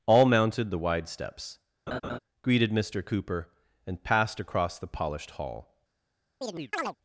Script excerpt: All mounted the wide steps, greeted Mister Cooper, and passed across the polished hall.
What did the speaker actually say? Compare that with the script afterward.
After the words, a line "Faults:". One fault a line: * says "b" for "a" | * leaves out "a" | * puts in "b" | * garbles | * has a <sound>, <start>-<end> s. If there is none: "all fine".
All mounted the wide steps, greeted Mister Cooper, and passed across the polished hall.
Faults:
* has a laugh, 1.9-2.2 s
* has a chirp, 6.4-7.0 s